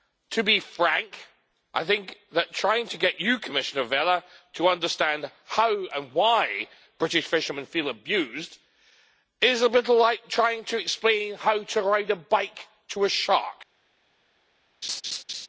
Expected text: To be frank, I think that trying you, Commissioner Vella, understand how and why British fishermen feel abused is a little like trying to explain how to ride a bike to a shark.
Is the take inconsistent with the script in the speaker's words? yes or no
yes